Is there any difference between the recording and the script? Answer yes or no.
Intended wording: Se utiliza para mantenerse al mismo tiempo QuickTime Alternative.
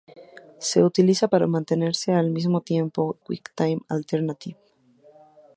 no